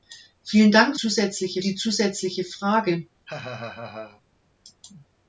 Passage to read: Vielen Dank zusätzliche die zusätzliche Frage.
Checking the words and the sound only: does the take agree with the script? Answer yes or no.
no